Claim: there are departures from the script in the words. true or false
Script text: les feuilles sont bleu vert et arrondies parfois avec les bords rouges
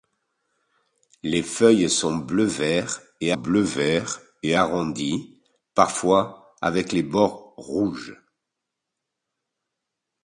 true